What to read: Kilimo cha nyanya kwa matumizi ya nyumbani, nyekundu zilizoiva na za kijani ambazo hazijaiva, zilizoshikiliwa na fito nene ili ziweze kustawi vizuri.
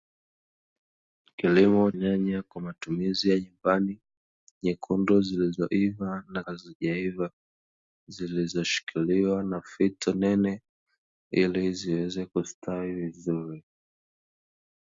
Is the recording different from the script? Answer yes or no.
yes